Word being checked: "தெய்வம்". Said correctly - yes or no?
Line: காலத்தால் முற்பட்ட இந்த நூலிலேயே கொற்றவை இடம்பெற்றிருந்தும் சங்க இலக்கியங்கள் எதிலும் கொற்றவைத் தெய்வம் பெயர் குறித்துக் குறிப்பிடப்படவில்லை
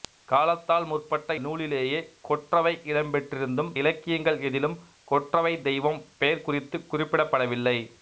yes